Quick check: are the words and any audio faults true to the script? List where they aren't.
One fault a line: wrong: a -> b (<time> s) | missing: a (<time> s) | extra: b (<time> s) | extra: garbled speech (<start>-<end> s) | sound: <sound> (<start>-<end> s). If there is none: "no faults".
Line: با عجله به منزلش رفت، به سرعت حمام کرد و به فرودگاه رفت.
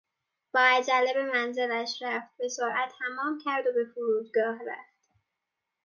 no faults